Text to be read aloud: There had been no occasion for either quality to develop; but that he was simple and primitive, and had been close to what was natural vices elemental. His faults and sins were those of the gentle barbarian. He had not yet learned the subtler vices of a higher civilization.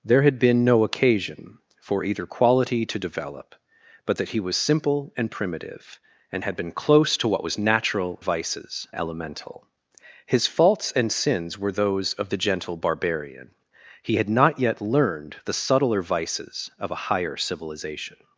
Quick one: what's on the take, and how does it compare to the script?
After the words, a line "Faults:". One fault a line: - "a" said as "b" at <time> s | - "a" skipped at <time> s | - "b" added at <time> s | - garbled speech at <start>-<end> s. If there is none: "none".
There had been no occasion for either quality to develop; but that he was simple and primitive, and had been close to what was natural vices elemental. His faults and sins were those of the gentle barbarian. He had not yet learned the subtler vices of a higher civilization.
Faults:
none